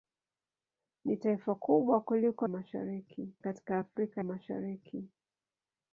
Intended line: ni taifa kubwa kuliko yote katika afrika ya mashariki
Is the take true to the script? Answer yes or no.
no